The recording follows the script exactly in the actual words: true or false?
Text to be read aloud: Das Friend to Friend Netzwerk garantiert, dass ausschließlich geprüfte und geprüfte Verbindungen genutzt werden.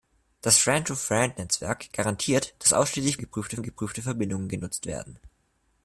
true